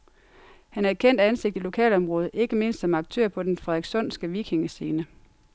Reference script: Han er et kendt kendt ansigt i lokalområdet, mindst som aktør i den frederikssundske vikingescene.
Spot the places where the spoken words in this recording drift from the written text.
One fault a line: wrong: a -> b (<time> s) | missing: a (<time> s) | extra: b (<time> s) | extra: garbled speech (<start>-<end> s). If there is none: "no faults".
missing: kendt (1.2 s)
extra: ikke (2.3 s)
wrong: i -> på (3.3 s)